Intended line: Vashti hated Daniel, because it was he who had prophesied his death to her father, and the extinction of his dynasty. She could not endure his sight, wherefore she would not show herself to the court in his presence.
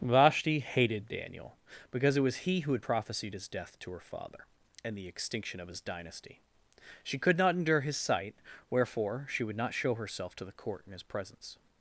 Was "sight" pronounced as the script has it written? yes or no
yes